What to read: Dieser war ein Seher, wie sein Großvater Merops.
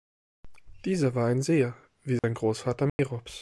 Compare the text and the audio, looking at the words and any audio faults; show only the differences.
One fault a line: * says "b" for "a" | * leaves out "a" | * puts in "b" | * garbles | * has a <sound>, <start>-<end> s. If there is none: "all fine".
* has a dropout, 2.2-2.2 s
* has a dropout, 2.9-3.0 s